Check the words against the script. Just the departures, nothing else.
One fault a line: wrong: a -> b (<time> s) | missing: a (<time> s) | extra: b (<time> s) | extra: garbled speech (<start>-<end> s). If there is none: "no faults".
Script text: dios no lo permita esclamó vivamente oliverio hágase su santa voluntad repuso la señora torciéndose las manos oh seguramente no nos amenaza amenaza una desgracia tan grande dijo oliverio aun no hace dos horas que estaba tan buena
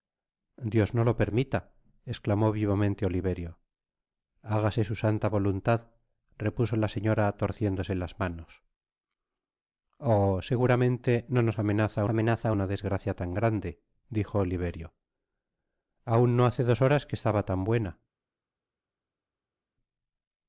no faults